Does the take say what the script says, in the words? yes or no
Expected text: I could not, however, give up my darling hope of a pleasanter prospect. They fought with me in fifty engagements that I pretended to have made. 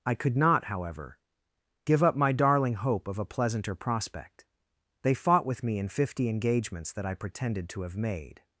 yes